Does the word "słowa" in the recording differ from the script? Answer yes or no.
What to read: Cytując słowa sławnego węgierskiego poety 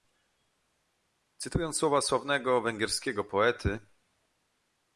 no